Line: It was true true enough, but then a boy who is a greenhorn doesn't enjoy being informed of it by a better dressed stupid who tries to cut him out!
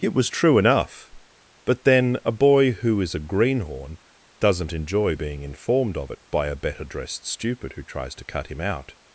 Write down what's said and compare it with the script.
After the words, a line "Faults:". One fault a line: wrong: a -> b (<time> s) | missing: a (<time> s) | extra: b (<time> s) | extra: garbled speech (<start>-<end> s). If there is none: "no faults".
It was true enough, but then a boy who is a greenhorn doesn't enjoy being informed of it by a better dressed stupid who tries to cut him out!
Faults:
missing: true (0.6 s)